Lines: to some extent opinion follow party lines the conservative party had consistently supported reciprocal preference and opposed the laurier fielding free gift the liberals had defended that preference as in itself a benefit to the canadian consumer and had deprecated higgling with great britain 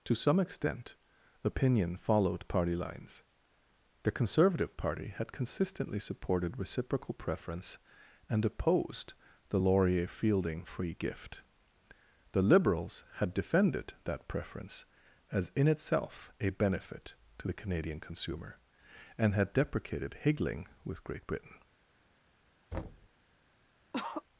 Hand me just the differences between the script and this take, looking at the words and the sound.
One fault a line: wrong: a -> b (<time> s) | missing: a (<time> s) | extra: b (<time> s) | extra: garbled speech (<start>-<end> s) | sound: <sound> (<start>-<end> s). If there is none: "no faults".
wrong: follow -> followed (1.9 s)
sound: thud (22.7-23.1 s)
sound: cough (23.9-24.2 s)